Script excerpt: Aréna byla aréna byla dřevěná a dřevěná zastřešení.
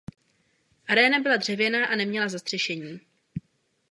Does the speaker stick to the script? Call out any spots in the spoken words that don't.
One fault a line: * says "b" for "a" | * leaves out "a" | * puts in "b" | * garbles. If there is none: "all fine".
* leaves out "aréna byla"
* says "neměla" for "dřevěná"